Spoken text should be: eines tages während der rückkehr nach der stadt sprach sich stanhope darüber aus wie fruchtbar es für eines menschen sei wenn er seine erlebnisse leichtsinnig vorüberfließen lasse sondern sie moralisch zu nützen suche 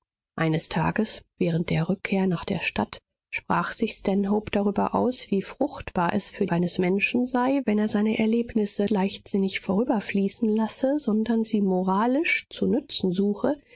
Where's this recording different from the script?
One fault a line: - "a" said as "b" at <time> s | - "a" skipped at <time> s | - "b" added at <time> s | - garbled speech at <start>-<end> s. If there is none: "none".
none